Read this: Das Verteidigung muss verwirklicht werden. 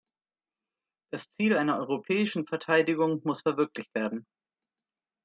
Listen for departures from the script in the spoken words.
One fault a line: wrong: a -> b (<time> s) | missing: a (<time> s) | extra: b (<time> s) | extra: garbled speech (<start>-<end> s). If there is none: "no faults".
extra: Ziel einer europäischen (1.3 s)